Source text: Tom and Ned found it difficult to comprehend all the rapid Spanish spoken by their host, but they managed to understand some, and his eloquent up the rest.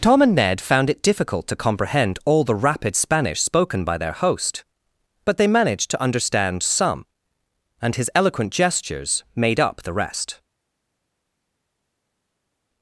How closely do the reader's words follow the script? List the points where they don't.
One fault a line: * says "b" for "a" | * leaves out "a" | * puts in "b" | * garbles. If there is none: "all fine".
* puts in "gestures made"